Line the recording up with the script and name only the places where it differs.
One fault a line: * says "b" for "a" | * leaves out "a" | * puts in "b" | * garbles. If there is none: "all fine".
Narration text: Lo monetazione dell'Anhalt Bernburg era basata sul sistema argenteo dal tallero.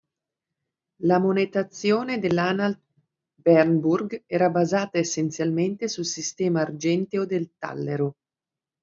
* says "La" for "Lo"
* puts in "essenzialmente"
* says "del" for "dal"